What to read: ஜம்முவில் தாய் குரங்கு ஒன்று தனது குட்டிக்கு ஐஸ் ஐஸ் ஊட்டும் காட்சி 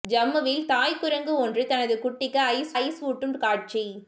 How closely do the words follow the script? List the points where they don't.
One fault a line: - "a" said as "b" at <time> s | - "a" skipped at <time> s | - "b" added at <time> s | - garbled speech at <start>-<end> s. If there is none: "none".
none